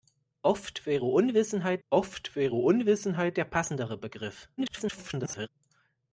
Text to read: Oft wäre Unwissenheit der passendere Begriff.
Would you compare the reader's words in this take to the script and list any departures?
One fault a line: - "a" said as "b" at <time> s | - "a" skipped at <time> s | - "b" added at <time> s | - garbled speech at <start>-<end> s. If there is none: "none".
- "oft wäre Unwissenheit" added at 1.9 s
- garbled speech at 4.6-5.5 s